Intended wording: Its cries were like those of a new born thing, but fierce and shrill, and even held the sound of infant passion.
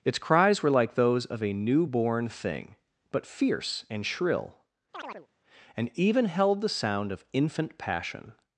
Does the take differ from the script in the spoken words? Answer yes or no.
no